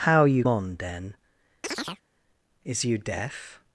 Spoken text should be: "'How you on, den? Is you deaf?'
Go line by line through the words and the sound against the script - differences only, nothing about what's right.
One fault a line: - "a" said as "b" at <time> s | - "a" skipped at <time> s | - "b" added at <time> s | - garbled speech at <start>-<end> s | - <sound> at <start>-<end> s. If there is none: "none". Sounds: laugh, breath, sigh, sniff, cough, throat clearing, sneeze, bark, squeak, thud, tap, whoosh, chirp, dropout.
- chirp at 1.6-2.0 s